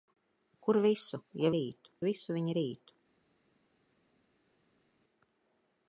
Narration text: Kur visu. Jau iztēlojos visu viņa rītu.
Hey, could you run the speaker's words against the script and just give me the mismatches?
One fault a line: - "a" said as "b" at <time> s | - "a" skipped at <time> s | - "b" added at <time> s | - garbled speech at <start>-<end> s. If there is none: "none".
- "iztēlojos" said as "rītu" at 1.6 s